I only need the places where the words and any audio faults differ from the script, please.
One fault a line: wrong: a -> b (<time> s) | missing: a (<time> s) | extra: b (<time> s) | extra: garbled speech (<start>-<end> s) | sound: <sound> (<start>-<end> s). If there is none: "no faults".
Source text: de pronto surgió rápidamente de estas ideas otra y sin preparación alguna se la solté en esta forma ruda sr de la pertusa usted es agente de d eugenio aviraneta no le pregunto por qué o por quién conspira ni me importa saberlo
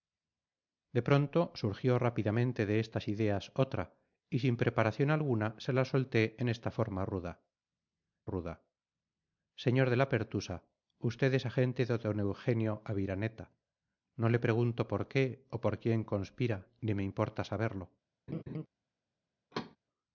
extra: ruda (8.3 s)
sound: laugh (18.3-18.7 s)
sound: thud (19.5-19.8 s)